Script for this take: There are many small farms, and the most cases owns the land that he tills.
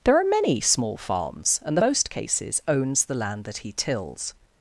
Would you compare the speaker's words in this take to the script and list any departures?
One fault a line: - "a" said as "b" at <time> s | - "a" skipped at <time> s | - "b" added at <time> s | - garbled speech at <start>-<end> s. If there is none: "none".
none